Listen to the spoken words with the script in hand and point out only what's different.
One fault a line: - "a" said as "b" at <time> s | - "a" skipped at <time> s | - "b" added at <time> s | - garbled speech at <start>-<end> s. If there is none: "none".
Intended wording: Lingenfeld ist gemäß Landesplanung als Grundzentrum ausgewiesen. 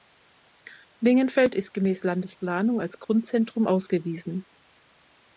none